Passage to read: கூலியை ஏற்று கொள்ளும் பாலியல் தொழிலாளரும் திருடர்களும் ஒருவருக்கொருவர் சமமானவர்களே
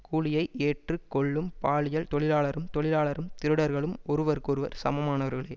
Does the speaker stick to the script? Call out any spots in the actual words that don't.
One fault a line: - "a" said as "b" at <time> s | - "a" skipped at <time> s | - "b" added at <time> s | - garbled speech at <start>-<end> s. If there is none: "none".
- "தொழிலாளரும்" added at 2.8 s